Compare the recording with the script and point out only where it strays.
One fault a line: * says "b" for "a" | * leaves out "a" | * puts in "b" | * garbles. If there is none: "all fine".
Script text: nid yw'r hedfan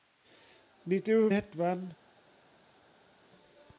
all fine